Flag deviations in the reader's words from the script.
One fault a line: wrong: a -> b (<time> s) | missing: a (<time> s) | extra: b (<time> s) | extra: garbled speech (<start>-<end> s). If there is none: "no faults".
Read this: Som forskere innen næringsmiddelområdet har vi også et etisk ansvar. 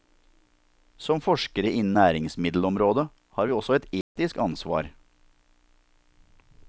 no faults